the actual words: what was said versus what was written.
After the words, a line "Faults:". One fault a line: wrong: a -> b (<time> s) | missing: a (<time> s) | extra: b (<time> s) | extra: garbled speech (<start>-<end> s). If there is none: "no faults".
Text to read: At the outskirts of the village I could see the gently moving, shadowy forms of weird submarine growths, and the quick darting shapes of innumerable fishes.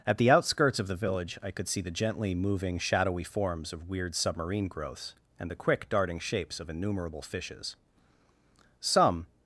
At the outskirts of the village I could see the gently moving, shadowy forms of weird submarine growths, and the quick darting shapes of innumerable fishes. Some
Faults:
extra: Some (8.8 s)